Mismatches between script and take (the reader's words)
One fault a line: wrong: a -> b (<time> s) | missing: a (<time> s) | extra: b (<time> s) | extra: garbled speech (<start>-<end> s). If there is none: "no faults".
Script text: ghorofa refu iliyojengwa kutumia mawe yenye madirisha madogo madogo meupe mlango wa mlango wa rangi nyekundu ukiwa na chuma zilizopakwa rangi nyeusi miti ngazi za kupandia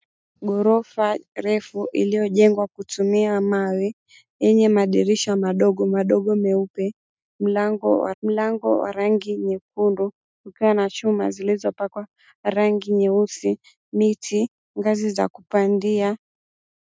no faults